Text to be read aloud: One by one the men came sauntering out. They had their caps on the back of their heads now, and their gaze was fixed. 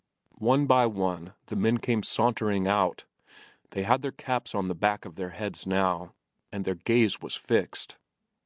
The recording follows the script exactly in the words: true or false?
true